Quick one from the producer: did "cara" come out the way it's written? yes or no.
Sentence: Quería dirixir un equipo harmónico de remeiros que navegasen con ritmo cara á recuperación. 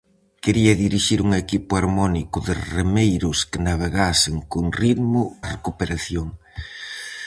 no